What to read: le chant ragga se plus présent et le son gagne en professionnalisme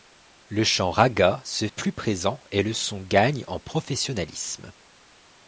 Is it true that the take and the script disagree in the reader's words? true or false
false